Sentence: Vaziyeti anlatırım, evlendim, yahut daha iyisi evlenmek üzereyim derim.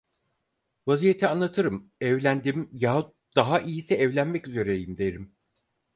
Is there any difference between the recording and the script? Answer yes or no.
no